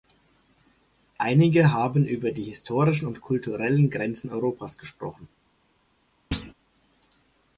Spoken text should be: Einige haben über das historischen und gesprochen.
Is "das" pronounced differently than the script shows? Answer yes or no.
yes